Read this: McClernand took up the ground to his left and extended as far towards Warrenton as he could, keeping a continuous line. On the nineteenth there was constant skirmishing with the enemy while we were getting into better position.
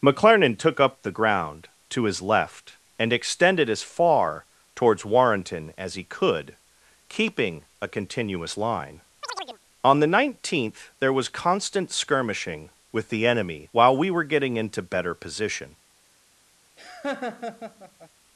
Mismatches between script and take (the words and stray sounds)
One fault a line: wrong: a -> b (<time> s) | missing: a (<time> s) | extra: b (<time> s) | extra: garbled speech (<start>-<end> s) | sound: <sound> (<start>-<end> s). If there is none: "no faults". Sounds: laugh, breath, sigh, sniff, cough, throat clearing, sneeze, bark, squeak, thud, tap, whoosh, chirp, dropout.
sound: chirp (9.2-9.6 s)
sound: laugh (16.8-18.1 s)